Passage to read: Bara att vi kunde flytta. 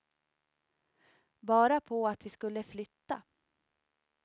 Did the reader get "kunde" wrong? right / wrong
wrong